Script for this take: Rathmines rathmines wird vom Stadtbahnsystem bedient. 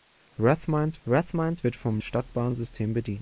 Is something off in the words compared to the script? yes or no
no